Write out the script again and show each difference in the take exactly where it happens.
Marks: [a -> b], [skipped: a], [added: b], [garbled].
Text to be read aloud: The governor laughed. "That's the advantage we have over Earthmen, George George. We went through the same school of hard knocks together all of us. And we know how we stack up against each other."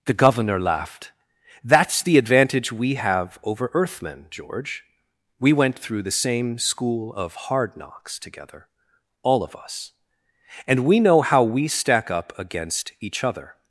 The governor laughed. "That's the advantage we have over Earthmen, George [skipped: George.] We went through the same school of hard knocks together all of us. And we know how we stack up against each other."